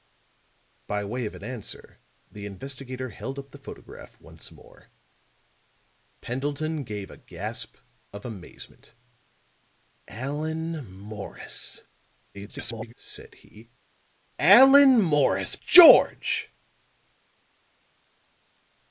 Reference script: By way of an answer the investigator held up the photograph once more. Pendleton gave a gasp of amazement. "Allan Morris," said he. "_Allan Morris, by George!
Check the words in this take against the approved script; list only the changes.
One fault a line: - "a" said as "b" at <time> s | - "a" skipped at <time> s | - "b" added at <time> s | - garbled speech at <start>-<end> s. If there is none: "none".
- garbled speech at 12.3-12.9 s
- "by" skipped at 15.6 s